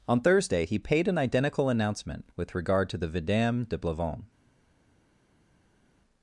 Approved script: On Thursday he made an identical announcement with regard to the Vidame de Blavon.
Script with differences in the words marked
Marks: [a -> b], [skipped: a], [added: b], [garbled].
On Thursday he [made -> paid] an identical announcement with regard to the Vidame de Blavon.